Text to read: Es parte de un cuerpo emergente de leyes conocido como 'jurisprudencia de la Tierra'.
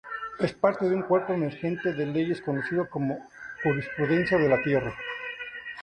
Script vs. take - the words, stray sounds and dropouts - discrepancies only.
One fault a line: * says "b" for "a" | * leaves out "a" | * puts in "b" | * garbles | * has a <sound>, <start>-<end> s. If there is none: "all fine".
all fine